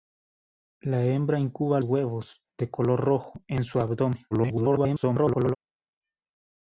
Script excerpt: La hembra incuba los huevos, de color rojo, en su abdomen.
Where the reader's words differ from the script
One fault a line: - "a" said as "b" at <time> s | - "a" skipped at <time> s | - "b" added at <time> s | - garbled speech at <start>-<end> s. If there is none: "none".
- "los" skipped at 1.8 s
- garbled speech at 4.3-5.6 s